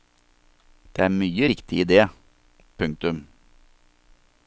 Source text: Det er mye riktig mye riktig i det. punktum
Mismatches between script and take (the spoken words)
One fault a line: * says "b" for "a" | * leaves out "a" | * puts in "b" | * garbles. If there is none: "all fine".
* leaves out "mye riktig"